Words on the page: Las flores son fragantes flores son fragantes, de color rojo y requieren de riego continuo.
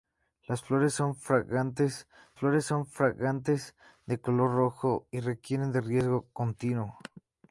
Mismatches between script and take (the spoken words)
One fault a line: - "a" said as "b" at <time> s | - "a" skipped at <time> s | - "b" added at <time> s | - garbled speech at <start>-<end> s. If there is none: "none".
none